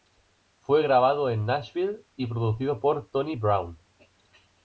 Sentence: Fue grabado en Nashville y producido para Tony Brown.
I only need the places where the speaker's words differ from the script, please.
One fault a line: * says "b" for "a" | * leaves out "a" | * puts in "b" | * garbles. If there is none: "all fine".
* says "por" for "para"